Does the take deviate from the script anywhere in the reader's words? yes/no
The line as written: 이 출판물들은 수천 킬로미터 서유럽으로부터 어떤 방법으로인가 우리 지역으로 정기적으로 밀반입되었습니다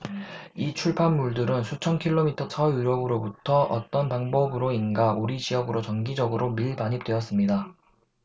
no